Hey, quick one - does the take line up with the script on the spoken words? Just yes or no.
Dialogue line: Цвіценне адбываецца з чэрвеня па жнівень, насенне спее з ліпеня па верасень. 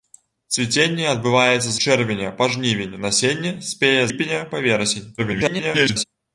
no